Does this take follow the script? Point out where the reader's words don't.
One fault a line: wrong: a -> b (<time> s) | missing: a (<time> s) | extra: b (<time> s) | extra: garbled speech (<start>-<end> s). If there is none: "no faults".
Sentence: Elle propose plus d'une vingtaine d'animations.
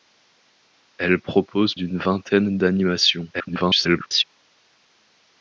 missing: plus (1.8 s)
extra: garbled speech (3.3-4.2 s)